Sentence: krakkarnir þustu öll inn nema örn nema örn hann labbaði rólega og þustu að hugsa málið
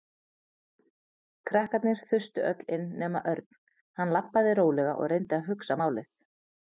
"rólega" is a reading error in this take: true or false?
false